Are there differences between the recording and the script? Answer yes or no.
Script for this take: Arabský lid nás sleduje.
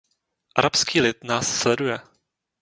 no